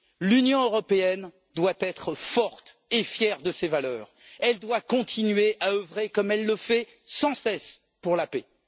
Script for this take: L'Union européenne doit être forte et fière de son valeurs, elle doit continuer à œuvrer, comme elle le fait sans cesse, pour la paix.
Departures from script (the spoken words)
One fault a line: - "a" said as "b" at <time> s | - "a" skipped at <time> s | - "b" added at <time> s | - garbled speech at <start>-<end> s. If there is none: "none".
- "son" said as "ses" at 3.5 s